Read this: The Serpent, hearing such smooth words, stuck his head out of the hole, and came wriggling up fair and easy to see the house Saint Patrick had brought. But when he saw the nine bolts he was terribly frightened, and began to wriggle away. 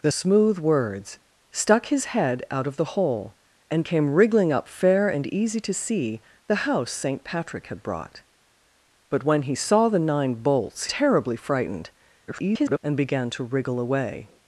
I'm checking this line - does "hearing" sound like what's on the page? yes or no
no